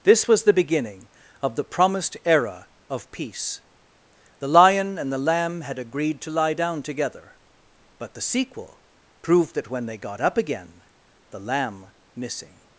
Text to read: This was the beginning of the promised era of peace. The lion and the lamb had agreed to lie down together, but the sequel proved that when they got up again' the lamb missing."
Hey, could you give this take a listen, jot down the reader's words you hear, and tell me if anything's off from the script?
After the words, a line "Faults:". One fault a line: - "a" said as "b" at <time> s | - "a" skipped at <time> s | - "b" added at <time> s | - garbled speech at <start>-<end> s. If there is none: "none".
This was the beginning of the promised era of peace. The lion and the lamb had agreed to lie down together, but the sequel proved that when they got up again' the lamb missing."
Faults:
none